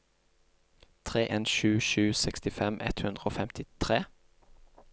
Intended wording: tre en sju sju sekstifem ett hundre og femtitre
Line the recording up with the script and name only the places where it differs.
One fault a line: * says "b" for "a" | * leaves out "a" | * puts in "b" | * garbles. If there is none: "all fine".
all fine